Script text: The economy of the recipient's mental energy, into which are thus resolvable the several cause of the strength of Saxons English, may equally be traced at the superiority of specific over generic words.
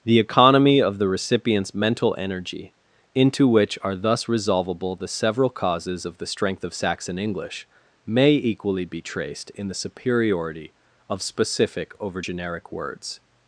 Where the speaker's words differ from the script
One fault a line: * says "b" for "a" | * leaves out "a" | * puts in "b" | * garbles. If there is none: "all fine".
* says "causes" for "cause"
* says "Saxon" for "Saxons"
* says "in" for "at"